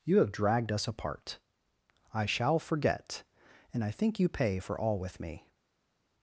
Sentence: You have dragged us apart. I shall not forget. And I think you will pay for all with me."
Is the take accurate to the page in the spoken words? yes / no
no